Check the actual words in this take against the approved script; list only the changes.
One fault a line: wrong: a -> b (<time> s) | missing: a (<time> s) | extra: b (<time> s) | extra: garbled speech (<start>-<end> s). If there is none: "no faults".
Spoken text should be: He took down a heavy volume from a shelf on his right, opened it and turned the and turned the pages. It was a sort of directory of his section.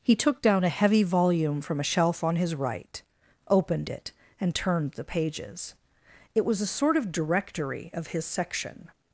missing: and turned the (5.0 s)